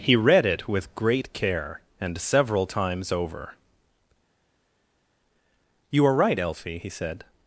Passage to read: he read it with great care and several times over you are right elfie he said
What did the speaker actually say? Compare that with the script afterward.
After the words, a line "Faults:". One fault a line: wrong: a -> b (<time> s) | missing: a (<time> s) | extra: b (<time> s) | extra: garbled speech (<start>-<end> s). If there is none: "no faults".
he read it with great care and several times over you are right elfie he said
Faults:
no faults